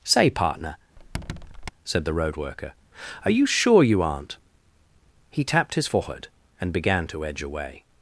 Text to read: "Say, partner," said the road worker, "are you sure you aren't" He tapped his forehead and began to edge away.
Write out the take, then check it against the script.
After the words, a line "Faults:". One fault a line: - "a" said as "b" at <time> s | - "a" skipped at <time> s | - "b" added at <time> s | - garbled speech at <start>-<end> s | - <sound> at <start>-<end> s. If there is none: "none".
"Say, partner," said the road worker, "are you sure you aren't" He tapped his forehead and began to edge away.
Faults:
- squeak at 1.0-1.7 s